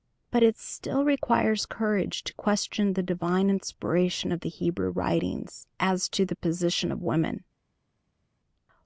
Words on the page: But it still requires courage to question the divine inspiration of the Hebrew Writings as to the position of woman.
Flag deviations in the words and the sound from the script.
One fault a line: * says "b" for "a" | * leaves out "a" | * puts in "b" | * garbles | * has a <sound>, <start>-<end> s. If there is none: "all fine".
all fine